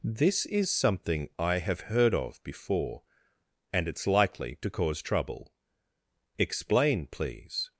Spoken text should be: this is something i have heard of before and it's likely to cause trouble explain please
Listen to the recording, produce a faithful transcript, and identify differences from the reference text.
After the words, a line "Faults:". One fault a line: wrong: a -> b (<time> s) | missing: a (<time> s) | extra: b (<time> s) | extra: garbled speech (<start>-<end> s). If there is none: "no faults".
this is something i have heard of before and it's likely to cause trouble explain please
Faults:
no faults